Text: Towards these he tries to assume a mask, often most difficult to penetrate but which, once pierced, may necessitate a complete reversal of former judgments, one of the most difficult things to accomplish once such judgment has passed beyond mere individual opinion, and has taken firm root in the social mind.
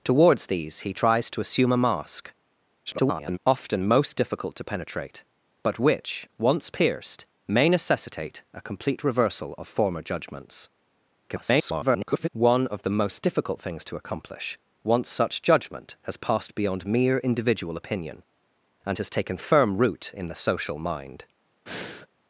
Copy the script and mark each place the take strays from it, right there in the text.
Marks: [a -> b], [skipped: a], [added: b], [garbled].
Towards these he tries to assume a mask, [garbled] often most difficult to penetrate but which, once pierced, may necessitate a complete reversal of former judgments, [garbled] one of the most difficult things to accomplish once such judgment has passed beyond mere individual opinion, and has taken firm root in the social mind.